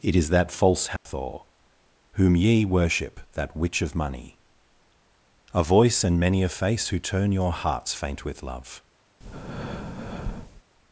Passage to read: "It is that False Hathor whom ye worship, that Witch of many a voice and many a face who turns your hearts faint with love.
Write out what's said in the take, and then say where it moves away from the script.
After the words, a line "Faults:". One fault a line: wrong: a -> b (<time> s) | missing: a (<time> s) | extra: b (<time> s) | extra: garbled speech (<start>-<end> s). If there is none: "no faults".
"It is that False Hathor whom ye worship, that Witch of money a voice and many a face who turn your hearts faint with love.
Faults:
wrong: many -> money (4.0 s)
wrong: turns -> turn (7.0 s)